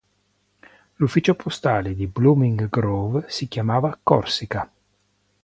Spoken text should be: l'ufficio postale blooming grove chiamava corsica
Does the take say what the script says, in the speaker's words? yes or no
no